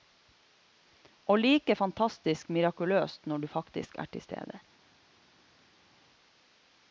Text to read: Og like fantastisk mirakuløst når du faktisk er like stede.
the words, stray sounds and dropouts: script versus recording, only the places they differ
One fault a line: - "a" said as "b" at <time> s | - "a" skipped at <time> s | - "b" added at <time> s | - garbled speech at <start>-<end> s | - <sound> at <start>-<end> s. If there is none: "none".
- "like" said as "til" at 4.1 s